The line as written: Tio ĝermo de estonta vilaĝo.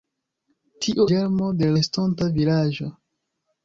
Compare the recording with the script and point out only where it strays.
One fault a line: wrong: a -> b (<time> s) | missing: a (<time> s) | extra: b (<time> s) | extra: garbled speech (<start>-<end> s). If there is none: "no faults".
no faults